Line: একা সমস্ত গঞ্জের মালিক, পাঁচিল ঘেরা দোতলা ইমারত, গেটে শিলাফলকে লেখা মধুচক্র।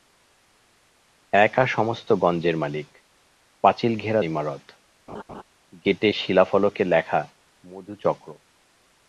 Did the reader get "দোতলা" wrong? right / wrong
wrong